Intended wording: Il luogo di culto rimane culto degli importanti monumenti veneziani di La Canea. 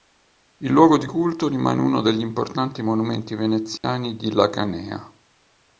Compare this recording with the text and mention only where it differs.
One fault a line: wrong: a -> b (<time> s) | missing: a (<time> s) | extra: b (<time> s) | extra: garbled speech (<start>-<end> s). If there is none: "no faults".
wrong: culto -> uno (1.8 s)